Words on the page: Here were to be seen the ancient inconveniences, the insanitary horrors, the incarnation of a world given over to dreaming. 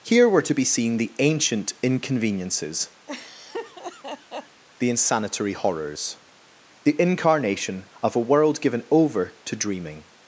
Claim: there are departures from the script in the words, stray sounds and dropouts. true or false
true